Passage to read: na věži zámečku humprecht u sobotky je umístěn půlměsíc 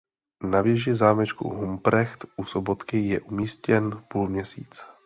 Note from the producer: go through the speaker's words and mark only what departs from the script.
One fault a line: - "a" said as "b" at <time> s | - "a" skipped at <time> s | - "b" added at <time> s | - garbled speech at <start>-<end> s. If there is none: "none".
none